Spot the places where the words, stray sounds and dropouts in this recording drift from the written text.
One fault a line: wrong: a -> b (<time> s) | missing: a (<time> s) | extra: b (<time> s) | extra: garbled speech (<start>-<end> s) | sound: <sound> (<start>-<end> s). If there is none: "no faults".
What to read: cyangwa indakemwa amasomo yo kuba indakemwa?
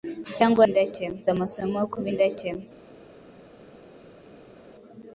no faults